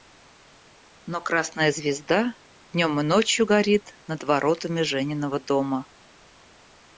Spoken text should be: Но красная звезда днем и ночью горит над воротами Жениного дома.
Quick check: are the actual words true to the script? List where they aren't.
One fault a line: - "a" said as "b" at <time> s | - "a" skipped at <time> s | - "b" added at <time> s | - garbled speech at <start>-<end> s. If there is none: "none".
none